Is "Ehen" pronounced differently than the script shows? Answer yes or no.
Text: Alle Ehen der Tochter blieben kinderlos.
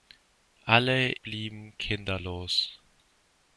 yes